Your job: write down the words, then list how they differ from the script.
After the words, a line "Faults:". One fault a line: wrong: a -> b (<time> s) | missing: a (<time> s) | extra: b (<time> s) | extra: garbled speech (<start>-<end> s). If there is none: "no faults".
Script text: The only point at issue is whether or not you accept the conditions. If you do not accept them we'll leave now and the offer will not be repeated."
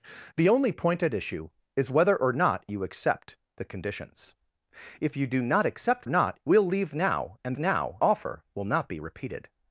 The only point at issue is whether or not you accept the conditions. If you do not accept not we'll leave now and now offer will not be repeated."
Faults:
wrong: them -> not (6.1 s)
wrong: the -> now (7.6 s)